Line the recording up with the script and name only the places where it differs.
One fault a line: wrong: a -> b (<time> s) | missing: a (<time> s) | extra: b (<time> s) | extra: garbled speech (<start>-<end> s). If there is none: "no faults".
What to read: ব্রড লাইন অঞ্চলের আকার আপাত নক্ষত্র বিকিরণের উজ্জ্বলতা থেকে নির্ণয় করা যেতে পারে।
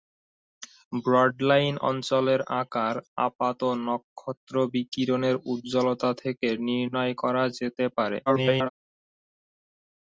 extra: garbled speech (8.3-8.7 s)